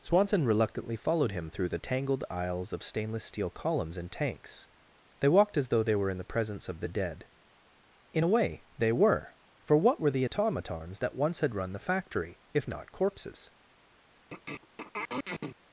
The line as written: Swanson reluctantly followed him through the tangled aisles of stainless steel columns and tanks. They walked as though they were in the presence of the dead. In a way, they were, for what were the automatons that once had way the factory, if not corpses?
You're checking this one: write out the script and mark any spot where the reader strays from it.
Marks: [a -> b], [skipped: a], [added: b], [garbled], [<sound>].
Swanson reluctantly followed him through the tangled aisles of stainless steel columns and tanks. They walked as though they were in the presence of the dead. In a way, they were, for what were the automatons that once had [way -> run] the factory, if not corpses? [throat clearing]